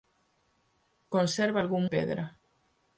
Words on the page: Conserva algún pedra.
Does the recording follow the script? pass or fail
pass